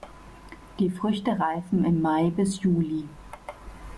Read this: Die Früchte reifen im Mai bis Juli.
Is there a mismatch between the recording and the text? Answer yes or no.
no